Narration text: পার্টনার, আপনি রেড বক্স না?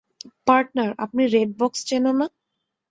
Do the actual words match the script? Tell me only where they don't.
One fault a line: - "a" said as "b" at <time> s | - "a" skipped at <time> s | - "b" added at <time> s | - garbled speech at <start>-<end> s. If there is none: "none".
- "চেনো" added at 1.9 s